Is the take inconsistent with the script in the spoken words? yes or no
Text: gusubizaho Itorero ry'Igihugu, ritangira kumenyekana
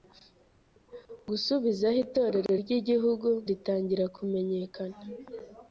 no